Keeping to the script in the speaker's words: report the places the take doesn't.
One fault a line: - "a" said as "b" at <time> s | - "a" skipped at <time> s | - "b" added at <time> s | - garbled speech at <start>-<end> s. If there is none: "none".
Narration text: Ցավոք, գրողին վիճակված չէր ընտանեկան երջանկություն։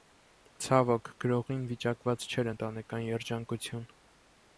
none